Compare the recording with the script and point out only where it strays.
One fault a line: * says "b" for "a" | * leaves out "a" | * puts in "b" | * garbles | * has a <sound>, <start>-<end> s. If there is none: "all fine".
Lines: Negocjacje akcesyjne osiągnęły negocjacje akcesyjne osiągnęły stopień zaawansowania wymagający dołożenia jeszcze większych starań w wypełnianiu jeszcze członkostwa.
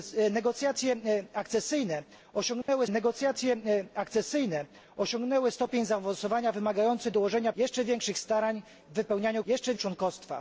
* has a dropout, 2.6-2.7 s